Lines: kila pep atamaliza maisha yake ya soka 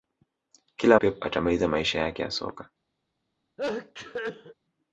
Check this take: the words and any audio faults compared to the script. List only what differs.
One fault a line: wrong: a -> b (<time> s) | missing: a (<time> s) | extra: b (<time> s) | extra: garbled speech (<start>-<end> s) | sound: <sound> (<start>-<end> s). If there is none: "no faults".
sound: sneeze (3.6-4.6 s)